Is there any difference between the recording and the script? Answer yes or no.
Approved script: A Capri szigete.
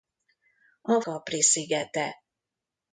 no